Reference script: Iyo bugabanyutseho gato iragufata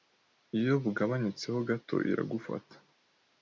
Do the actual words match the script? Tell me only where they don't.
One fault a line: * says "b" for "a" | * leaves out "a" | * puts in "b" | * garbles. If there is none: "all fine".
all fine